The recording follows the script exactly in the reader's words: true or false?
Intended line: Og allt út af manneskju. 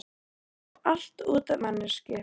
true